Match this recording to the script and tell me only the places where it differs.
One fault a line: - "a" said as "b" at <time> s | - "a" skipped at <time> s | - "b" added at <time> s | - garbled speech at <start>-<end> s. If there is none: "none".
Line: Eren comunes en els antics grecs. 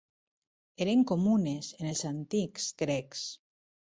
none